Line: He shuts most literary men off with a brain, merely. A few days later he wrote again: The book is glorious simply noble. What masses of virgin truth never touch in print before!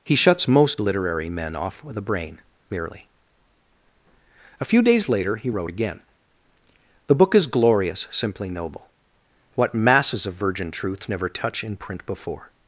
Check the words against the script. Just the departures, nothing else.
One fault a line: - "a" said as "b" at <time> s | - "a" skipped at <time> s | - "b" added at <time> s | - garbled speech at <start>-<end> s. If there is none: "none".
none